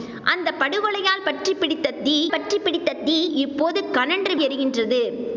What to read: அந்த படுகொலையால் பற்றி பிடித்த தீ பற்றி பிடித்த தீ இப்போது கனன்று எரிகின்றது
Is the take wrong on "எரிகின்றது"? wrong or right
right